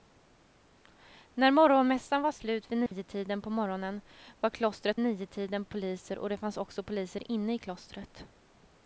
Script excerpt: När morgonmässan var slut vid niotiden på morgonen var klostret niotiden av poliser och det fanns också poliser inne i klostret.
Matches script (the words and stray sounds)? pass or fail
fail